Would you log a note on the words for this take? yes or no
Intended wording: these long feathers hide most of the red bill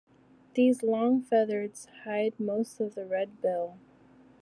no